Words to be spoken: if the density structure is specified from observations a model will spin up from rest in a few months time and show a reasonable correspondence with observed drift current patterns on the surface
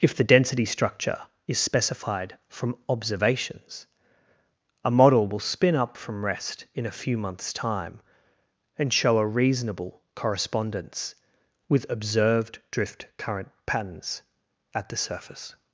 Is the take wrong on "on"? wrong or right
wrong